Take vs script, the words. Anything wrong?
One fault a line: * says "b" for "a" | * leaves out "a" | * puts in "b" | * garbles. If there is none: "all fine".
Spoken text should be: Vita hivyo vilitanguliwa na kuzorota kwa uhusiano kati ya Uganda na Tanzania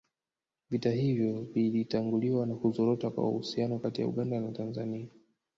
all fine